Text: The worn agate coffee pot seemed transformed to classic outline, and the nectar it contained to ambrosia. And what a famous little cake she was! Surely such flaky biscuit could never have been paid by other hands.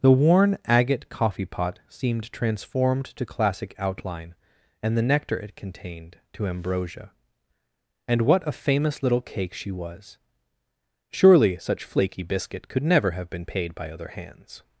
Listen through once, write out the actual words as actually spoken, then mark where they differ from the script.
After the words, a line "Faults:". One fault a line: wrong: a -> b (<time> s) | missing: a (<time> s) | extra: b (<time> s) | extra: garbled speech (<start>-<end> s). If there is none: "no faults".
The worn agate coffee pot seemed transformed to classic outline, and the nectar it contained to ambrosia. And what a famous little cake she was! Surely such flaky biscuit could never have been paid by other hands.
Faults:
no faults